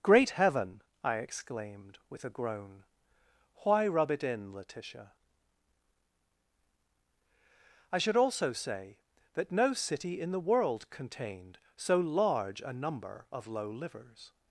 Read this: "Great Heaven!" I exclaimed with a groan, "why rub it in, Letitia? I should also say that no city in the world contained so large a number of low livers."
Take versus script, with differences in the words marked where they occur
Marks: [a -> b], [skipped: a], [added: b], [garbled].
"Great Heaven!" I exclaimed with a groan, "why rub it in, Letitia? I should also say that no city in the world contained so large a number of low livers."